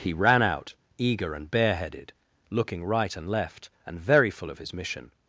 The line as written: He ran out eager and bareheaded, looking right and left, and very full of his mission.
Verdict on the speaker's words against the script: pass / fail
pass